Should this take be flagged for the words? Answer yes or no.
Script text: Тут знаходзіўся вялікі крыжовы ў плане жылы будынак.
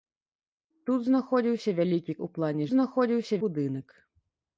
yes